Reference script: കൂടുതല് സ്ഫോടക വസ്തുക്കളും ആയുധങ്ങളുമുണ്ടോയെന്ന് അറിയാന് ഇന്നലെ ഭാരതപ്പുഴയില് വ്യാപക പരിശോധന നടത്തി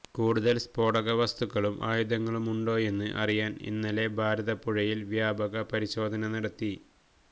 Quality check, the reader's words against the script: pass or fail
pass